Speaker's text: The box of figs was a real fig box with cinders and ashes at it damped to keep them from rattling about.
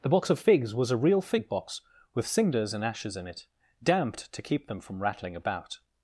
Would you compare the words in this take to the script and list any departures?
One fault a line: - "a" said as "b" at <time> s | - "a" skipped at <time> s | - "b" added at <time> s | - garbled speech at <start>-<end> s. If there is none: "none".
- "at" said as "in" at 3.2 s